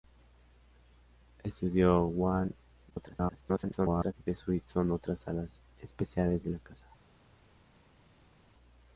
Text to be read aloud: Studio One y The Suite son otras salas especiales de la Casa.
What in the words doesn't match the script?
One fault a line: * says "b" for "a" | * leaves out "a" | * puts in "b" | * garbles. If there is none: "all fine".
* garbles